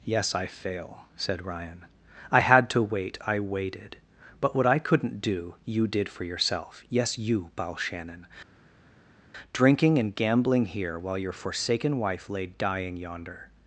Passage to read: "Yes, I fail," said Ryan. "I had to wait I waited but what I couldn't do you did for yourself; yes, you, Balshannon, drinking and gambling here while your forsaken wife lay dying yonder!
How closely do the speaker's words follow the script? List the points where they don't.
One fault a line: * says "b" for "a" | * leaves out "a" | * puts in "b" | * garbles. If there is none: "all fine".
all fine